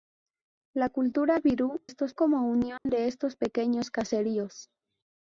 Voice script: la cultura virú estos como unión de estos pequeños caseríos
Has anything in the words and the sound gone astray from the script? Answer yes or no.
yes